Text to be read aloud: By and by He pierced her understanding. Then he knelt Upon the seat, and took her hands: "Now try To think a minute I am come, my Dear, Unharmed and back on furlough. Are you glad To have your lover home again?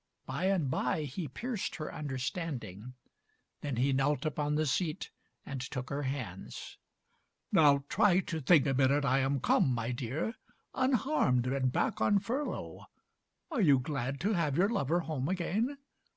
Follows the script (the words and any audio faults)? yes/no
yes